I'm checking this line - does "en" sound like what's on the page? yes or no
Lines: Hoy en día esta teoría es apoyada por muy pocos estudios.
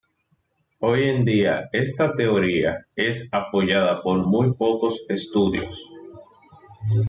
yes